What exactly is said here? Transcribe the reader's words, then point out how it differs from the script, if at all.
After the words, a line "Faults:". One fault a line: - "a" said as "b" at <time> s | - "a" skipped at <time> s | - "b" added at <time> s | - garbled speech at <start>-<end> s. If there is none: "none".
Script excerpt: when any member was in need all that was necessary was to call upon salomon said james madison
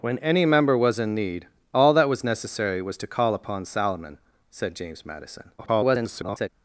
when any member was in need all that was necessary was to call upon salomon said james madison [garbled]
Faults:
- garbled speech at 5.6-6.5 s